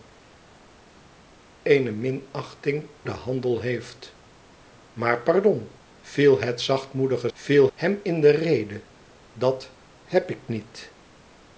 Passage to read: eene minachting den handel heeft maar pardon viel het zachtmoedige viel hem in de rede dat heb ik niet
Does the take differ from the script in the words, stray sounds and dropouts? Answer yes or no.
no